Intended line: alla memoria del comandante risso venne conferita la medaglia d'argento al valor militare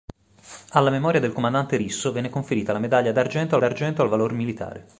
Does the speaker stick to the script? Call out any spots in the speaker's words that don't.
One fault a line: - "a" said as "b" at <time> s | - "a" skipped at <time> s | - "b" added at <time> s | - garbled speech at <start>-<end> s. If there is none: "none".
- "d'argento" added at 3.6 s